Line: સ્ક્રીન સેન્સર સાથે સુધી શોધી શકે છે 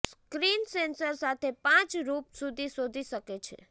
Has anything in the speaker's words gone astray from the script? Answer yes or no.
yes